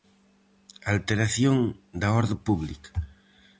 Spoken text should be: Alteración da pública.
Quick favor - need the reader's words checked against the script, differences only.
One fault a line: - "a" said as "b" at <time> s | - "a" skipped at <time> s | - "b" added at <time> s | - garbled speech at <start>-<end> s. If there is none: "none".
- "orde" added at 2.2 s